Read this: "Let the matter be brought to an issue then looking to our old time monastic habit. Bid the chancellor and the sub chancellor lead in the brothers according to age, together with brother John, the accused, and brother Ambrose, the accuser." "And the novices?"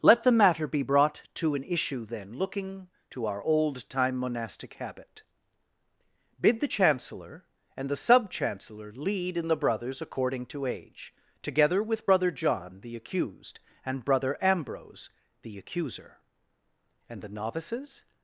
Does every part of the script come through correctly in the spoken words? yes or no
yes